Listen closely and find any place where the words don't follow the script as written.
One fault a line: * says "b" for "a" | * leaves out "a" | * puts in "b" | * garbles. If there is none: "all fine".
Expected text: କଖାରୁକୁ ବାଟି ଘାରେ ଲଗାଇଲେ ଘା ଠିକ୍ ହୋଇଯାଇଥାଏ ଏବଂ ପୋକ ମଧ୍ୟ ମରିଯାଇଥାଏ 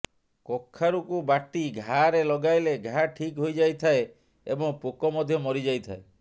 all fine